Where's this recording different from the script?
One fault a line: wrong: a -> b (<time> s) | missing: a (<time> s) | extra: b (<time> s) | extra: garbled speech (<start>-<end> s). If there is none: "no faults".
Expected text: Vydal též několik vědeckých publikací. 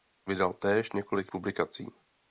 missing: vědeckých (1.3 s)